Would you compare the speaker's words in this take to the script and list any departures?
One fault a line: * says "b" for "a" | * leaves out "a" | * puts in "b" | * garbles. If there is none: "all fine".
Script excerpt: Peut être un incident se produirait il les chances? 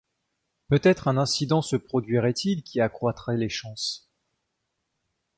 * puts in "qui accroîtrait"